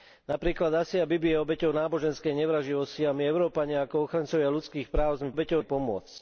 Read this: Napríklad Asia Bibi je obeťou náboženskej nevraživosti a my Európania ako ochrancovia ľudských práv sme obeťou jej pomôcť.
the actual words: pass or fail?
pass